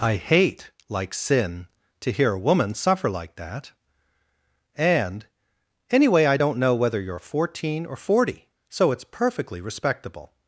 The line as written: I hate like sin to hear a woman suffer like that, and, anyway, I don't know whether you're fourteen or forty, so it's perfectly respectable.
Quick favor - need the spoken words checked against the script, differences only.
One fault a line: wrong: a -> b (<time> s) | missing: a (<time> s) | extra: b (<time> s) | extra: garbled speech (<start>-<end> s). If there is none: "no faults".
no faults